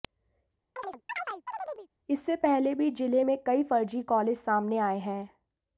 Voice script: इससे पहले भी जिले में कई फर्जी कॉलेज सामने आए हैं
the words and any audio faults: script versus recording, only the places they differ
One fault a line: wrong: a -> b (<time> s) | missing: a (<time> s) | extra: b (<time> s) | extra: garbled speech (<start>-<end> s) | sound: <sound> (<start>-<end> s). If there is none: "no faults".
sound: chirp (0.8-1.9 s)